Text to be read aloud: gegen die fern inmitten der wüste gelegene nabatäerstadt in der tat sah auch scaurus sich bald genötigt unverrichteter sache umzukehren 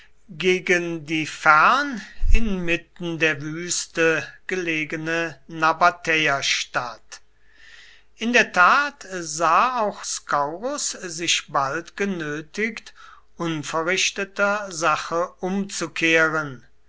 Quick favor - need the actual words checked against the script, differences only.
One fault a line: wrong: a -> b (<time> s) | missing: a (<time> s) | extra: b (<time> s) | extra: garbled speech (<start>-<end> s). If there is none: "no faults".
no faults